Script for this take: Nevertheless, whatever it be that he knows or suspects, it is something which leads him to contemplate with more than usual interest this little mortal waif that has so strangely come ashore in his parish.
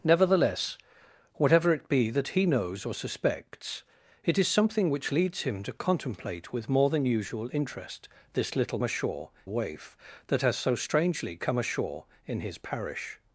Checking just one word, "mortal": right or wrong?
wrong